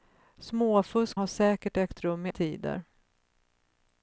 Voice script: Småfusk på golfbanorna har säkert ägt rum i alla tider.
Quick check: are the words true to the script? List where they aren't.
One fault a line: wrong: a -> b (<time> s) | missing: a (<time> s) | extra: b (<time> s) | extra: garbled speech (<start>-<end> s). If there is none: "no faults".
missing: på golfbanorna (1.2 s)
missing: alla (2.3 s)